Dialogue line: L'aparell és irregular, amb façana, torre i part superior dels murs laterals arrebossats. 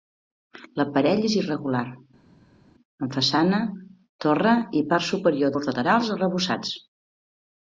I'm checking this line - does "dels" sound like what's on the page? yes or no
no